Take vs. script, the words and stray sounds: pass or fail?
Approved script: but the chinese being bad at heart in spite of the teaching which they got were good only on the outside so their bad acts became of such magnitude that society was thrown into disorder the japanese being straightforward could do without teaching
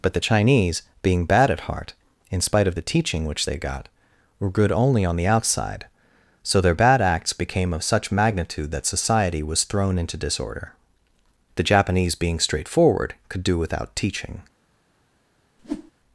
fail